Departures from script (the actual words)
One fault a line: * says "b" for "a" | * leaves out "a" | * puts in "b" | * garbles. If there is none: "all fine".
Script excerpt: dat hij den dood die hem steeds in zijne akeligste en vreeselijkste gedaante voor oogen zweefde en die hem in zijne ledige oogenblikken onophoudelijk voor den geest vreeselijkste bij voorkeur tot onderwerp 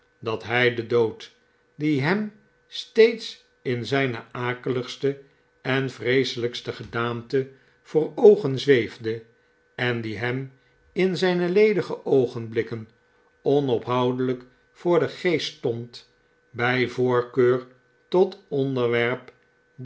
* says "stond" for "vreeselijkste"